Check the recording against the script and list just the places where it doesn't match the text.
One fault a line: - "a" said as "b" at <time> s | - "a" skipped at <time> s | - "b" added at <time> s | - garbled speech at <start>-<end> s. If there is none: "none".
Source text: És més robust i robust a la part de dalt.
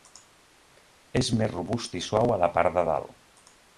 - "robust" said as "suau" at 2.1 s